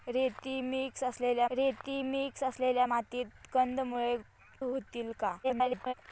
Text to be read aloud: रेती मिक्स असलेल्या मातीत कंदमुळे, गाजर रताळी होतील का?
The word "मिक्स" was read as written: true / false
true